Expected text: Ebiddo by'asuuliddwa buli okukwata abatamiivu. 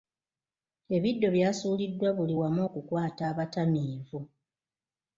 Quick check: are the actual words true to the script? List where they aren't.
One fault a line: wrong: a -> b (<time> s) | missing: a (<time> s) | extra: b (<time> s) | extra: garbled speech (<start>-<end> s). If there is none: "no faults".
extra: wamu (2.4 s)